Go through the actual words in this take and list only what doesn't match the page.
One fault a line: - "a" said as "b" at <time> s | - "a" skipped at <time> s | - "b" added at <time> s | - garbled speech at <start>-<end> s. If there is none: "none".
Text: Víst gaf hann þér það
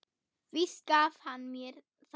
- "þér" said as "mér" at 1.5 s